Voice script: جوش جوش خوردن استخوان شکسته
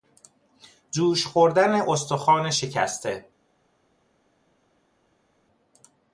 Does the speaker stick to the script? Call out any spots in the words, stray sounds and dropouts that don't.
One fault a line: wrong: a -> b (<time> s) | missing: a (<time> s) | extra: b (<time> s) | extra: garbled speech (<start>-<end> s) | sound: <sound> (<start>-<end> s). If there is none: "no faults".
missing: جوش (1.2 s)